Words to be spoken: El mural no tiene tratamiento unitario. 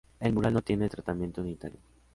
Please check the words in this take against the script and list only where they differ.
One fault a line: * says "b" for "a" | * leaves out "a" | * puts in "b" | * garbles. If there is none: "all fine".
all fine